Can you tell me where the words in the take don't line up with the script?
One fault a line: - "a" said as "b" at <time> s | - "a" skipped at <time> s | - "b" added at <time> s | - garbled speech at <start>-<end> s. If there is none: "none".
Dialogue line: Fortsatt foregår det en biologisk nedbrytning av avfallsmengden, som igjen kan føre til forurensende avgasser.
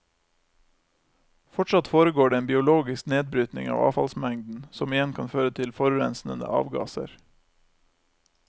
none